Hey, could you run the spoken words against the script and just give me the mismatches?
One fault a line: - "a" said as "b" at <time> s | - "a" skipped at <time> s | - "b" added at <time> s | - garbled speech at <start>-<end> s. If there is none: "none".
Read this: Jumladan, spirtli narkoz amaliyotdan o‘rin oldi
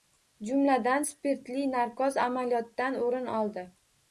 none